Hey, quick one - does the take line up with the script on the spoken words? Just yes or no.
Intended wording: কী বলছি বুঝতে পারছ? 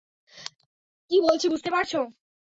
yes